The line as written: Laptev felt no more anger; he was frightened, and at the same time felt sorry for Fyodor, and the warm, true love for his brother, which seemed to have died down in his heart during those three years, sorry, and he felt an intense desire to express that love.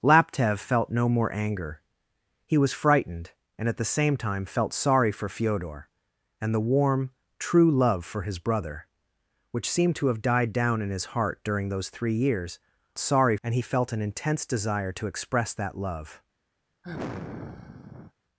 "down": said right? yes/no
yes